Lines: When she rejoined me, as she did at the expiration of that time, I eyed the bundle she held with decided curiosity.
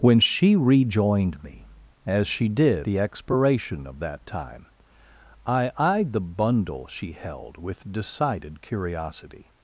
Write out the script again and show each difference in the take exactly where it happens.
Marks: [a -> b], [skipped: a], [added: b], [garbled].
When she rejoined me, as she did [skipped: at] the expiration of that time, I eyed the bundle she held with decided curiosity.